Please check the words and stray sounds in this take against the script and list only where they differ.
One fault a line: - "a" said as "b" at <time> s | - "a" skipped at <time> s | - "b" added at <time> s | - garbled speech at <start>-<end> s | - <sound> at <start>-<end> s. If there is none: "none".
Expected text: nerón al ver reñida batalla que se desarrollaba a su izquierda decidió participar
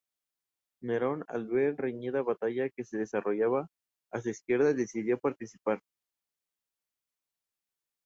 none